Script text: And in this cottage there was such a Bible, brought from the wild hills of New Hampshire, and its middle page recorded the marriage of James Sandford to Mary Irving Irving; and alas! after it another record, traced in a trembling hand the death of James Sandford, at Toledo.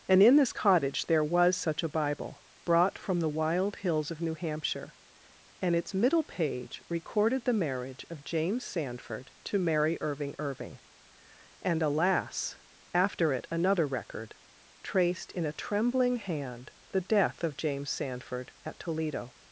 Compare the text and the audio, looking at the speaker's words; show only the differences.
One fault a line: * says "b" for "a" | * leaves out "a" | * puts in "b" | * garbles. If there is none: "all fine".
all fine